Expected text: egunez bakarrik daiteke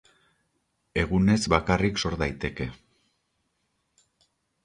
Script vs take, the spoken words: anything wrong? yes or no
yes